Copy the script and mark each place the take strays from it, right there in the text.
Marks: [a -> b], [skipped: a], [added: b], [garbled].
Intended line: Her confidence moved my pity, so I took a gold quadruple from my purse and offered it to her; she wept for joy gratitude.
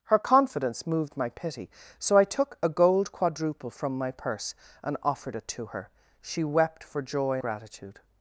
Her confidence moved my pity, so I took a gold quadruple from my purse and offered it to her; she wept for joy gratitude.